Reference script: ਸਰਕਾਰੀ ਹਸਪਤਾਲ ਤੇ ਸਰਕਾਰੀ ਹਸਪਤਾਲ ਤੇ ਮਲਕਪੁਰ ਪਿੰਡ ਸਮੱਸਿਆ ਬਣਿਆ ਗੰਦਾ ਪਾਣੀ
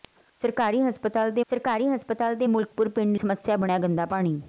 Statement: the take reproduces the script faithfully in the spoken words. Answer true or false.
true